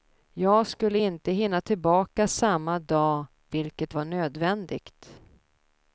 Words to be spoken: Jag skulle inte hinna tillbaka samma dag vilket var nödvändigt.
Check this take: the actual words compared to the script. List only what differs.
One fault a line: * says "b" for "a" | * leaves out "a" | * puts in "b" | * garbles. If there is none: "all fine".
all fine